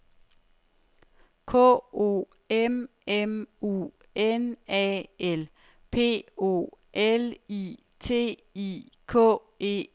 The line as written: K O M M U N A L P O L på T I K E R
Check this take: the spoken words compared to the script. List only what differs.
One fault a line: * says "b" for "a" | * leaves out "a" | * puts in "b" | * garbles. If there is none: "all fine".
* says "I" for "på"